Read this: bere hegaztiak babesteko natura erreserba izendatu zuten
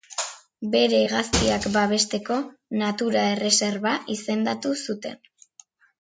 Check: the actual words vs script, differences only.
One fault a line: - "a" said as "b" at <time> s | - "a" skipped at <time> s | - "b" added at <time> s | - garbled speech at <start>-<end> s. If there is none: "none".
none